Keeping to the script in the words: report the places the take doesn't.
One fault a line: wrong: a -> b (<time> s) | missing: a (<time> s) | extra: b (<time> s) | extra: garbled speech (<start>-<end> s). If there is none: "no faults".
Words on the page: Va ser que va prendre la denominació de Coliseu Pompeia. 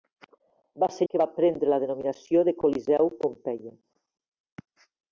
no faults